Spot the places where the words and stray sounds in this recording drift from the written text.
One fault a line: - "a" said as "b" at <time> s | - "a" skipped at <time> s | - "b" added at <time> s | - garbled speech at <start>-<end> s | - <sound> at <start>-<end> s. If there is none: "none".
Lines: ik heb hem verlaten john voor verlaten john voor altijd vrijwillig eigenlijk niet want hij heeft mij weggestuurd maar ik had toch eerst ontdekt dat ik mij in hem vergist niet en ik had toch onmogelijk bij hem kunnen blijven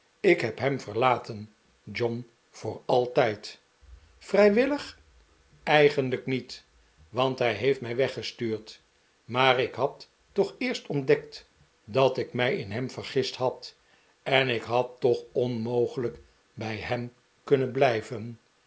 - "verlaten john voor" skipped at 2.8 s
- "niet" said as "had" at 13.4 s